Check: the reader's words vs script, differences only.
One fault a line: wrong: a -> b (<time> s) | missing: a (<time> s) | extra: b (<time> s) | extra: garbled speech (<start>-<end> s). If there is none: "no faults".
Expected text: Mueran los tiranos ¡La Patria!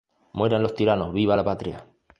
extra: Viva (1.1 s)